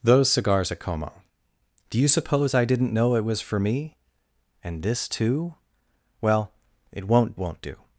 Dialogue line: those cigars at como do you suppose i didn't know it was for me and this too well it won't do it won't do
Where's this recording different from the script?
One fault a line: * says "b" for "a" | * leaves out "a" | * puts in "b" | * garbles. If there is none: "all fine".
* leaves out "do it"